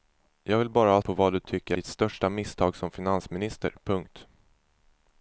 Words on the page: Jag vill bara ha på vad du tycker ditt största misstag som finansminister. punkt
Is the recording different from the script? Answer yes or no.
no